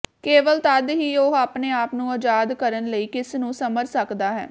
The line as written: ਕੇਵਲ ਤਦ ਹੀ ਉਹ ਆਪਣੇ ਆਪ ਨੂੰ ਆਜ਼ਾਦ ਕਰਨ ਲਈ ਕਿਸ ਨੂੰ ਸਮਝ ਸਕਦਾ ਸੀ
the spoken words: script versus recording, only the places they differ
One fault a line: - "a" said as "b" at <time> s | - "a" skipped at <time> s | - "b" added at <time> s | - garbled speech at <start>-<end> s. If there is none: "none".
- "ਸੀ" said as "ਹੈ" at 4.3 s